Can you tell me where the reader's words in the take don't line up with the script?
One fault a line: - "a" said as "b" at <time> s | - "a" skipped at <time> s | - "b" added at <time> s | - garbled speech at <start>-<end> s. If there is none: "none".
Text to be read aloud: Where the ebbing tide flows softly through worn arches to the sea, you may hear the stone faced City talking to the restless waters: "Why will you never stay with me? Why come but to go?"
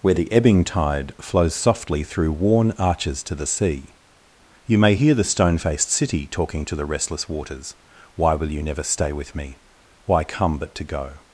none